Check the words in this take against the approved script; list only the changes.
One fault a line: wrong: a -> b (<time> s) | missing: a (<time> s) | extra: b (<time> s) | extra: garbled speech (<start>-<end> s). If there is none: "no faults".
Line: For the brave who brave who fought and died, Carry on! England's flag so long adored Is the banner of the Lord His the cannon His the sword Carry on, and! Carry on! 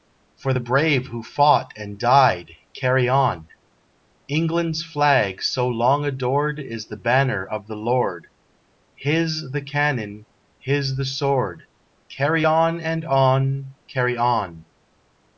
missing: brave who (1.2 s)
extra: on (13.1 s)